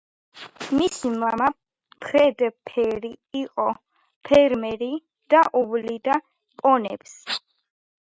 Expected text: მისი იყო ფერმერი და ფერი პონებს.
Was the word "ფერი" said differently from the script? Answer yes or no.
yes